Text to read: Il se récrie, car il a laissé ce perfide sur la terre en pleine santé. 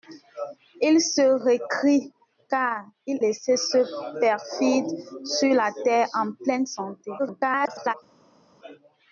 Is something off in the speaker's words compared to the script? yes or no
yes